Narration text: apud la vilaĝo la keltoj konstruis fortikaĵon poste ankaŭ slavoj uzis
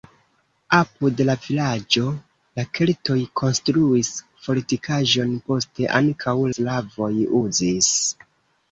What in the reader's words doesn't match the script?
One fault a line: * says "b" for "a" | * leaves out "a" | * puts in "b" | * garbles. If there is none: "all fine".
all fine